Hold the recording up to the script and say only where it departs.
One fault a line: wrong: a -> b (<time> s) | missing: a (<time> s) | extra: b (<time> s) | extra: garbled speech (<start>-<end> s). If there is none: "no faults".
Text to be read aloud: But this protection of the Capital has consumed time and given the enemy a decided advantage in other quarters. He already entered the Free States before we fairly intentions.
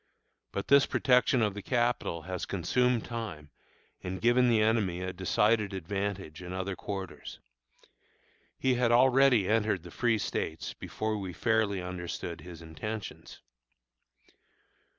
extra: had (8.7 s)
extra: understood his (11.8 s)